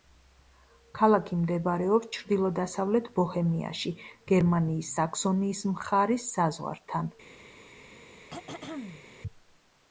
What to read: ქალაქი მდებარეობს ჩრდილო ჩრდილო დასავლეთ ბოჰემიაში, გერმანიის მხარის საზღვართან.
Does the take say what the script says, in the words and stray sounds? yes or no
no